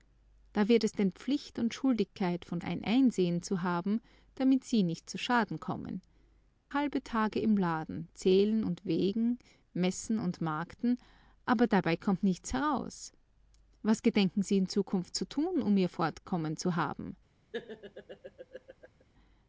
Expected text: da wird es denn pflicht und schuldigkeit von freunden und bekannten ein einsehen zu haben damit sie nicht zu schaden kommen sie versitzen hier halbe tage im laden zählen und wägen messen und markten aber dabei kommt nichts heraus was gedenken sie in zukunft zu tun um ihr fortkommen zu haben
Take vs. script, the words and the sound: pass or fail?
fail